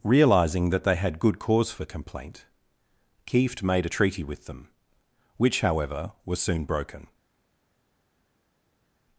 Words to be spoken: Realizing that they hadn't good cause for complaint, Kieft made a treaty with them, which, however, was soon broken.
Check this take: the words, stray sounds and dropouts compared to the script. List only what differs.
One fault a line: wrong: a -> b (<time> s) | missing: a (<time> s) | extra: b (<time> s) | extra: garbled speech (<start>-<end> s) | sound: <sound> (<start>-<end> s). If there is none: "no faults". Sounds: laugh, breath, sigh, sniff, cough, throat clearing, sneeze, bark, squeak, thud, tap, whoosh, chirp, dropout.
wrong: hadn't -> had (0.9 s)